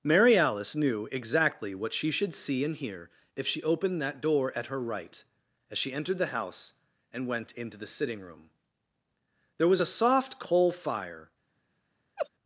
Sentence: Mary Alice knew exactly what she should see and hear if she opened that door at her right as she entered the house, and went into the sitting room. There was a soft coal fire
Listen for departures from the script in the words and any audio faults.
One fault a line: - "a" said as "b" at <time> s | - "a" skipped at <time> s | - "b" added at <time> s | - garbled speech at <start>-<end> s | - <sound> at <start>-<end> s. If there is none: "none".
- laugh at 12.2-12.3 s